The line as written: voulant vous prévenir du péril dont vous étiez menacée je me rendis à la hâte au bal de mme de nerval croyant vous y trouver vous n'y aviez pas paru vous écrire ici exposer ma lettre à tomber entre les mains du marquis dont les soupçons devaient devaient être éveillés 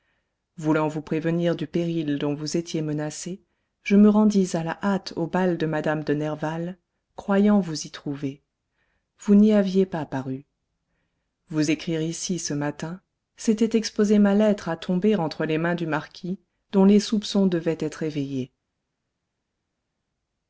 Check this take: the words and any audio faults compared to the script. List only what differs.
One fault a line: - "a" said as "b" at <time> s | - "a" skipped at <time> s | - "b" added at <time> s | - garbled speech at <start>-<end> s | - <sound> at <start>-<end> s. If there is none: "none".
- "ce matin c'était" added at 12.4 s
- "devaient" skipped at 17.8 s